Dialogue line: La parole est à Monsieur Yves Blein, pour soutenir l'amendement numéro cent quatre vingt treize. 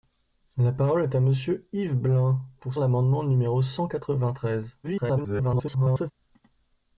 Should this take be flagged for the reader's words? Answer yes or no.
yes